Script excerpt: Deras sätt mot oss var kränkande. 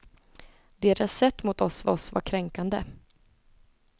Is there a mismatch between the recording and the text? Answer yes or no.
yes